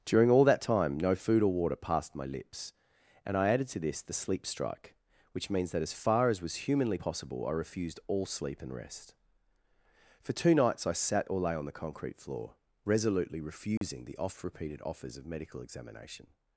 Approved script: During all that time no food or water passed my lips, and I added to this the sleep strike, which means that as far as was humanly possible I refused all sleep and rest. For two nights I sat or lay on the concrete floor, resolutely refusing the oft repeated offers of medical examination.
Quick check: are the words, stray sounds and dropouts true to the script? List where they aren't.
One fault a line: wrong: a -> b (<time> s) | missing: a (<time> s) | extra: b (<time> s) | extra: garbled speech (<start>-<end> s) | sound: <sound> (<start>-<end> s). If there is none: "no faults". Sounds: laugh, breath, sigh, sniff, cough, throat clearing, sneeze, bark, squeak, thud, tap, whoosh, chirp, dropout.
sound: dropout (13.8-13.8 s)